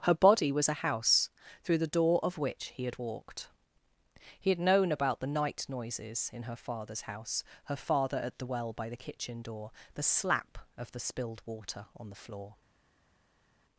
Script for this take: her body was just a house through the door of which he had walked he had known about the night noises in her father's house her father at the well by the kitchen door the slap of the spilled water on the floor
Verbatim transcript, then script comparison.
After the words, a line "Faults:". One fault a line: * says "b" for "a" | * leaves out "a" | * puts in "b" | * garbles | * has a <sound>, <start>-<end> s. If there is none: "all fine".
her body was a house through the door of which he had walked he had known about the night noises in her father's house her father at the well by the kitchen door the slap of the spilled water on the floor
Faults:
* leaves out "just"